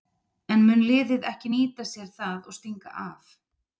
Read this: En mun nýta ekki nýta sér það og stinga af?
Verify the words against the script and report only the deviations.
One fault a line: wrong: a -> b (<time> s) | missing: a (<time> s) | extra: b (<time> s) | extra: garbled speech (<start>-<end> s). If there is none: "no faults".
wrong: nýta -> liðið (0.9 s)